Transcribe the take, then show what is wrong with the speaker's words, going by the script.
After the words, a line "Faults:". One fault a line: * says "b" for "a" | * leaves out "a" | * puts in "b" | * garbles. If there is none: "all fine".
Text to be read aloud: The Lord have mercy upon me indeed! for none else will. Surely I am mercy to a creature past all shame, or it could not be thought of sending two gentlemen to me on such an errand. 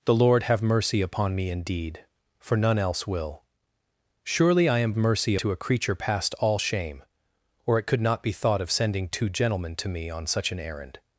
The Lord have mercy upon me indeed! for none else will. Surely I am mercy to a creature past all shame, or it could not be thought of sending two gentlemen to me on such an errand.
Faults:
all fine